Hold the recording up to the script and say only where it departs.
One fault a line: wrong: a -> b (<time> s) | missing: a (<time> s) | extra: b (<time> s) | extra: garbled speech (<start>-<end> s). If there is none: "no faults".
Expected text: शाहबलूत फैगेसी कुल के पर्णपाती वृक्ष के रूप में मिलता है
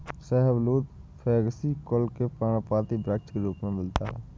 no faults